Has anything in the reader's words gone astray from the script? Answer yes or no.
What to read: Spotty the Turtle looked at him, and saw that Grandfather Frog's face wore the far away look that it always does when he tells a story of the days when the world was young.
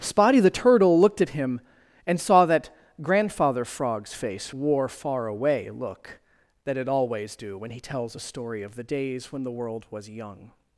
yes